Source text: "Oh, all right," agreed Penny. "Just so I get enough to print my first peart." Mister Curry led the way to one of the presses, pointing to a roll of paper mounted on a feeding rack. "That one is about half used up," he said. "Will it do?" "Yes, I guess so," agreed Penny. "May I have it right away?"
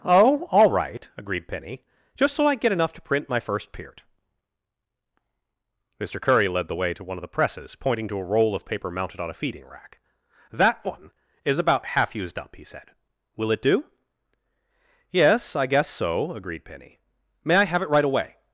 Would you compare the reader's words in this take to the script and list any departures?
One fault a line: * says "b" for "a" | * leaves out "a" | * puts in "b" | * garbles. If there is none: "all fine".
all fine